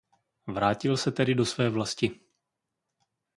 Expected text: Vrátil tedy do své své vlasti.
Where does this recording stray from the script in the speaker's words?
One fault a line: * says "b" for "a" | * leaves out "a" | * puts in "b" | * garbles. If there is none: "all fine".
* puts in "se"
* leaves out "své"